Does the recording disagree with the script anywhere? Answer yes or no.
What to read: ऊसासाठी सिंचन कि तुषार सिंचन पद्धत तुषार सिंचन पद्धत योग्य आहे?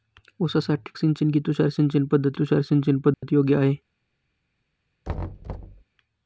no